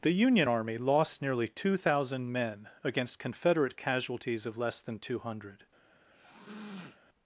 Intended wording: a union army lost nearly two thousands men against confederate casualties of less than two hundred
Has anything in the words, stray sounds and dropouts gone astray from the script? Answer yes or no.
yes